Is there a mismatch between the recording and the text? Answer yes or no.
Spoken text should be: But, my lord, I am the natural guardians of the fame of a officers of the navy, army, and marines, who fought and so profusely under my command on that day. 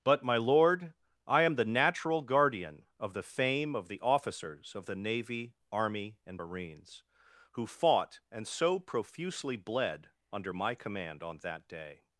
yes